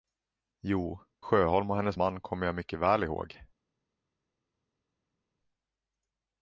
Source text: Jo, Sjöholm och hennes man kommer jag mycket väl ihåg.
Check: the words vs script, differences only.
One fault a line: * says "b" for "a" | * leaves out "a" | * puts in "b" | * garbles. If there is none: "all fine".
all fine